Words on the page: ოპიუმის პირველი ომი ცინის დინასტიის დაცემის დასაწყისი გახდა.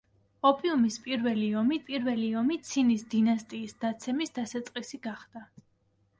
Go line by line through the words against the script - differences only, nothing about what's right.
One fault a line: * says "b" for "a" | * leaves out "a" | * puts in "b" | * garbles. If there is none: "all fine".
* puts in "პირველი ომი"